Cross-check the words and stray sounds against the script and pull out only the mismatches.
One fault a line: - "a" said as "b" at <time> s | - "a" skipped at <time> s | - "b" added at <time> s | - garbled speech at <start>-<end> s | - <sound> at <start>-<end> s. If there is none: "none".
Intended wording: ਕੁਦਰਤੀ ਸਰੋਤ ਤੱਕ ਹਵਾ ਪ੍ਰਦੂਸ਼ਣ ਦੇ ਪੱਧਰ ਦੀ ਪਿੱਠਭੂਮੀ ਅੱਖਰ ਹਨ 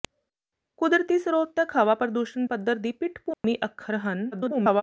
- "ਦੇ" skipped at 2.5 s
- dropout at 3.3-3.4 s
- garbled speech at 4.3-4.8 s